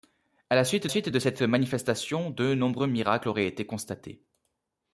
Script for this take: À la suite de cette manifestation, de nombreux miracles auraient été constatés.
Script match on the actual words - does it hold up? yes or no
no